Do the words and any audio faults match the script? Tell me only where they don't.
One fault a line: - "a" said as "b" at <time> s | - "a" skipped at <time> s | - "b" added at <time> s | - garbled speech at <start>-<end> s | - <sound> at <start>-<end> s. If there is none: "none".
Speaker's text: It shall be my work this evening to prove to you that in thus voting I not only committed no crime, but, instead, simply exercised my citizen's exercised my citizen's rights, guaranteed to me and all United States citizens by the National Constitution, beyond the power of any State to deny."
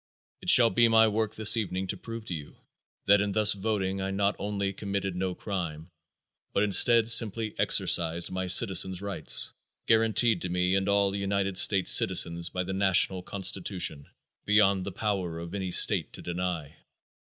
- "exercised my citizen's" skipped at 9.0 s